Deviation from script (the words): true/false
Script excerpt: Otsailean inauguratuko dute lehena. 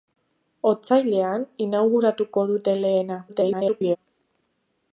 true